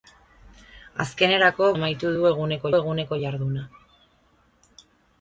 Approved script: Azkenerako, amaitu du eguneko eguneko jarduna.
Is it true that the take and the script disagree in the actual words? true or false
false